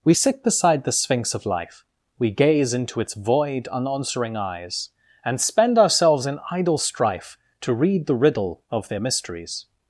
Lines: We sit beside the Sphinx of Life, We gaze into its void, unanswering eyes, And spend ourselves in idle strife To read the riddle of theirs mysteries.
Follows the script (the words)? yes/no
no